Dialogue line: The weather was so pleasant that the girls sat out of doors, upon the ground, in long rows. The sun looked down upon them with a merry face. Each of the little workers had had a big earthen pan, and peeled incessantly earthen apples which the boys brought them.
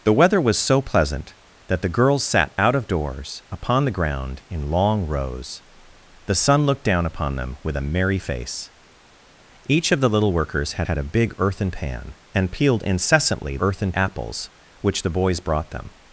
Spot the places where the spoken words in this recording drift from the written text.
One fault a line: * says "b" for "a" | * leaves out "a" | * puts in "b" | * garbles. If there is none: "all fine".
all fine